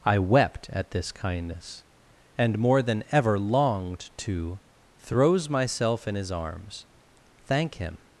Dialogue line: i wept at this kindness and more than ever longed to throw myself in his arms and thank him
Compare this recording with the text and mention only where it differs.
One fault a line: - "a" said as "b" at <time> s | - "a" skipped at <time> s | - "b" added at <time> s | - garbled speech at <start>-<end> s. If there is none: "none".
- "throw" said as "throws" at 5.0 s
- "and" skipped at 6.8 s